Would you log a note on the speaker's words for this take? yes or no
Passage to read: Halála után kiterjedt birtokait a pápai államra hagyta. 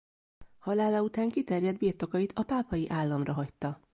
no